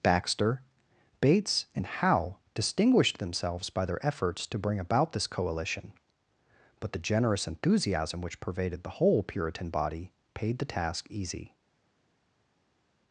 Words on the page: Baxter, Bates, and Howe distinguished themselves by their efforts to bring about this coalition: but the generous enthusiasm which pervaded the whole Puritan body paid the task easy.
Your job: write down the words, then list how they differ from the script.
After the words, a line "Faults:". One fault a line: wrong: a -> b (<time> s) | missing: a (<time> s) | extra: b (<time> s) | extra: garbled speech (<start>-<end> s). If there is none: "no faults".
Baxter, Bates, and Howe distinguished themselves by their efforts to bring about this coalition: but the generous enthusiasm which pervaded the whole Puritan body paid the task easy.
Faults:
no faults